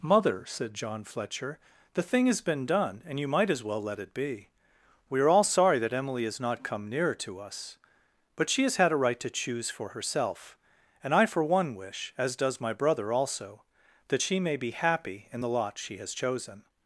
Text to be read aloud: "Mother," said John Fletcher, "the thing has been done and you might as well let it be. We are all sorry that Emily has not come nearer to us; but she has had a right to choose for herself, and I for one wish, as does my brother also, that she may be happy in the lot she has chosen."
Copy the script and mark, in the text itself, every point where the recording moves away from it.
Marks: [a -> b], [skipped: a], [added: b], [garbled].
"Mother," said John Fletcher, "the thing has been done and you might as well let it be. We are all sorry that Emily has not come nearer to us; but she has had a right to choose for herself, and I for one wish, as does my brother also, that she may be happy in the lot she has chosen."